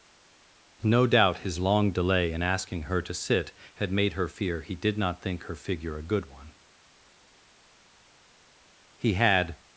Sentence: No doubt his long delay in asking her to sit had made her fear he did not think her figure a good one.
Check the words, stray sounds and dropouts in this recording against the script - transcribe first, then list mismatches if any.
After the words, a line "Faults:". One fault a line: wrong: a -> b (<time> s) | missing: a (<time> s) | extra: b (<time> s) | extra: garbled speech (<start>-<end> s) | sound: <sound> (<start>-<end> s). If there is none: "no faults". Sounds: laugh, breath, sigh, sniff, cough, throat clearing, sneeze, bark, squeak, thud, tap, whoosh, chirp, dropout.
No doubt his long delay in asking her to sit had made her fear he did not think her figure a good one. He had
Faults:
extra: He had (9.0 s)